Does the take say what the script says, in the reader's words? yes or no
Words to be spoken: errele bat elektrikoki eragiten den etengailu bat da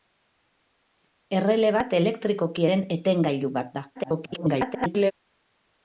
no